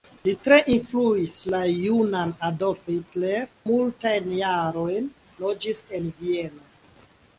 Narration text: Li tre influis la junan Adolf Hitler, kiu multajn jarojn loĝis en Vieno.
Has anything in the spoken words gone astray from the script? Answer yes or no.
yes